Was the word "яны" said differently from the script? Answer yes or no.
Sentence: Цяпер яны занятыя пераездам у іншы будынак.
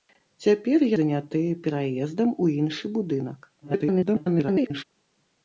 yes